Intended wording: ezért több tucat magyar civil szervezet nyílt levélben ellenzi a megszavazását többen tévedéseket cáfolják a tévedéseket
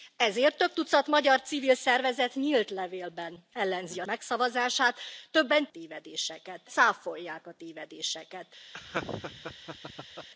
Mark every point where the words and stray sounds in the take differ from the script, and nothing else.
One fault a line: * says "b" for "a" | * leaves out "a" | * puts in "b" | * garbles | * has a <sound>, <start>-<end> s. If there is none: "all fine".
* has a laugh, 8.7-10.3 s